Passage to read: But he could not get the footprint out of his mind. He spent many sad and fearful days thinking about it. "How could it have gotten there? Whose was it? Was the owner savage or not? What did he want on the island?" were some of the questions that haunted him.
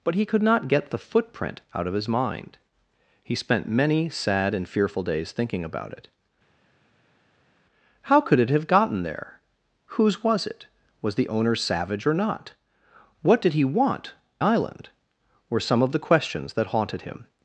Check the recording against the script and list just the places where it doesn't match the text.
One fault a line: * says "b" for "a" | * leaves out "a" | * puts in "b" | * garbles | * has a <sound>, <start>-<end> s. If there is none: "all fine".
* leaves out "on the"